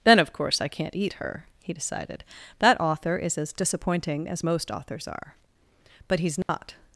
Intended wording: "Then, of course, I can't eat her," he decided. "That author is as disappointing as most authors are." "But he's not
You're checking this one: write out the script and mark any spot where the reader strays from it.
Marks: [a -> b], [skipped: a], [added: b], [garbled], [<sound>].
"Then, of course, I can't eat her," he decided. "That author is as disappointing as most authors are." "But he's not [dropout]